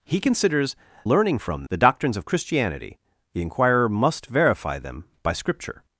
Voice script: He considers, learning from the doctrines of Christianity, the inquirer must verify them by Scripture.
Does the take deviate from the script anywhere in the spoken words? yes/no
no